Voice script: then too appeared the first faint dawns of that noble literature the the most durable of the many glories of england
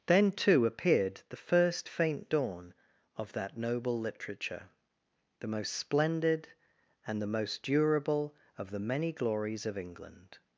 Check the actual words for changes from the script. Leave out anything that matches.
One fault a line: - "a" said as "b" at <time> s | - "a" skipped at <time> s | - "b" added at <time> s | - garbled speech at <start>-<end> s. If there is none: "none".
- "dawns" said as "dawn" at 2.3 s
- "most splendid and" added at 5.5 s